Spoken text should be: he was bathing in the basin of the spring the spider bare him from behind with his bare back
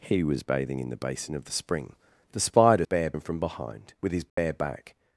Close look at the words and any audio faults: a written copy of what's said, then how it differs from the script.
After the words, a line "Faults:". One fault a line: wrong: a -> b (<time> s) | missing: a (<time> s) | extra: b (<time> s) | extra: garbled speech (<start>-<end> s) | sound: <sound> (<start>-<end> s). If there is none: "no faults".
he was bathing in the basin of the spring the spider bare him from behind with his bare back
Faults:
sound: dropout (4.3-4.4 s)